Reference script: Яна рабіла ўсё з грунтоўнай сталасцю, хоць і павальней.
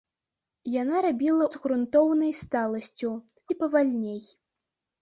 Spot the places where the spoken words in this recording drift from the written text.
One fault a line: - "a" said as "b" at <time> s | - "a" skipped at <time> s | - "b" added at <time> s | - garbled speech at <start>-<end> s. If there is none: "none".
- "ўсё" skipped at 1.4 s
- "хоць" skipped at 3.1 s